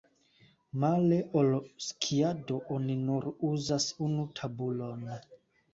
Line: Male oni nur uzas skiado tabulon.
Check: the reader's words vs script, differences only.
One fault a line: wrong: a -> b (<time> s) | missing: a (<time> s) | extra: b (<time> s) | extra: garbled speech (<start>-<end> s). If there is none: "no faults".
extra: ol skiado (1.4 s)
wrong: skiado -> unu (4.1 s)